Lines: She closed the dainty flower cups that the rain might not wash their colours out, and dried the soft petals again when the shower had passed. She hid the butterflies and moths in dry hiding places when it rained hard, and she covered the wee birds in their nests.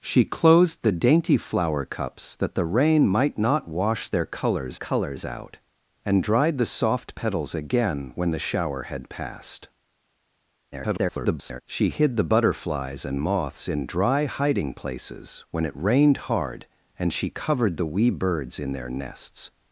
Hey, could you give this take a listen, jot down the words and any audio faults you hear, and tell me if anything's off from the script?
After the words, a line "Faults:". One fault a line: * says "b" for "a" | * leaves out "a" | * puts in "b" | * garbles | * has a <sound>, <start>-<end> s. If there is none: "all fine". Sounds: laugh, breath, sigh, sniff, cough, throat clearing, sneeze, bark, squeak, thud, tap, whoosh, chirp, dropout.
She closed the dainty flower cups that the rain might not wash their colours colours out, and dried the soft petals again when the shower had passed. [garbled] She hid the butterflies and moths in dry hiding places when it rained hard, and she covered the wee birds in their nests.
Faults:
* puts in "colours"
* garbles